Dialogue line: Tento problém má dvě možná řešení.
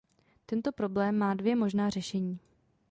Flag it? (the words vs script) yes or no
no